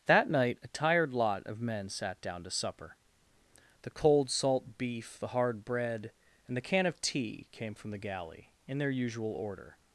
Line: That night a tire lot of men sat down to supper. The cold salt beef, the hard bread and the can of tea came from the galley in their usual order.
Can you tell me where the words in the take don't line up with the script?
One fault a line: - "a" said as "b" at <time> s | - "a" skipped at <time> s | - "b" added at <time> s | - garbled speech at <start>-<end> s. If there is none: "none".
- "tire" said as "tired" at 0.7 s